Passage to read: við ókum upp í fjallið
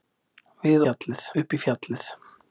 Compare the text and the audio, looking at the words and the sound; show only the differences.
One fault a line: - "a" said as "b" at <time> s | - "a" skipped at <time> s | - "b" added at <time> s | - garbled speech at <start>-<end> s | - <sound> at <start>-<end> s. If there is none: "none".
- "ókum" said as "fjallið" at 0.8 s